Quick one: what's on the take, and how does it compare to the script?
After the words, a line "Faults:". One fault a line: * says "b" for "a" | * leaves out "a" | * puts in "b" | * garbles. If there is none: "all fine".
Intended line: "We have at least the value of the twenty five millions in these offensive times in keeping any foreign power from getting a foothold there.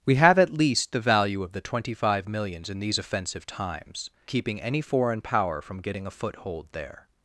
"We have at least the value of the twenty five millions in these offensive times keeping any foreign power from getting a foothold there.
Faults:
* leaves out "in"